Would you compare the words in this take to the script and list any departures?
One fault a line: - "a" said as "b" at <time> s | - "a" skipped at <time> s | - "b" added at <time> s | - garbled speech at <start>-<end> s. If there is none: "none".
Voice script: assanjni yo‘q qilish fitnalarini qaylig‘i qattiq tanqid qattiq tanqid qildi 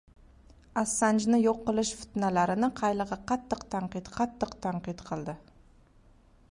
none